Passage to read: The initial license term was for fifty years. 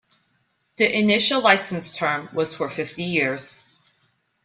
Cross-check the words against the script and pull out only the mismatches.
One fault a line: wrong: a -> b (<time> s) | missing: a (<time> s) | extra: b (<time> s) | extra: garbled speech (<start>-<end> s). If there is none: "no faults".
no faults